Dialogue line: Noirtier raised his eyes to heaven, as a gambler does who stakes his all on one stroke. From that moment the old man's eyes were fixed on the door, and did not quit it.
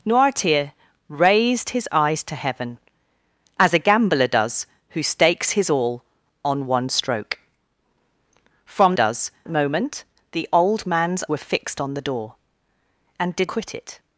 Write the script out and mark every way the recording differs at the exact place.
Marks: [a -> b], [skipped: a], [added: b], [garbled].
Noirtier raised his eyes to heaven, as a gambler does who stakes his all on one stroke. From [that -> does] moment the old man's [skipped: eyes] were fixed on the door, and did [skipped: not] quit it.